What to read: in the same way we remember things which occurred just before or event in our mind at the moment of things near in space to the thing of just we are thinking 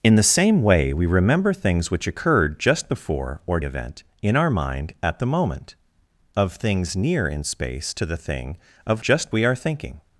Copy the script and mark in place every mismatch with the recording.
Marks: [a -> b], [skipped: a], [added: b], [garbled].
in the same way we remember things which occurred just before or event in our mind at the moment of things near in space to the thing of just we are thinking